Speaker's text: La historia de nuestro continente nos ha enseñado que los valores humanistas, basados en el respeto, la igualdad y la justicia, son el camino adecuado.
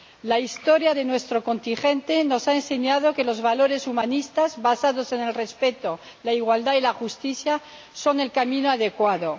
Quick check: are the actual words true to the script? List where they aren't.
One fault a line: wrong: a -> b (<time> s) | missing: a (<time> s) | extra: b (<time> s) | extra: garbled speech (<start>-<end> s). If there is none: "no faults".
no faults